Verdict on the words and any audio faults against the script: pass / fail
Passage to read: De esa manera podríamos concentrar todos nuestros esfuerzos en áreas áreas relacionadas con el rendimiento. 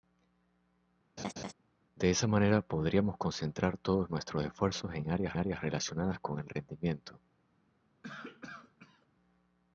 fail